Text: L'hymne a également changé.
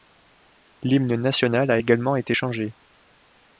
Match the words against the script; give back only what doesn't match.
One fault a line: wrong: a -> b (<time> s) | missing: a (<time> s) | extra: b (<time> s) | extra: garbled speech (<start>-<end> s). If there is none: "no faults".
extra: national (1.2 s)
extra: été (2.1 s)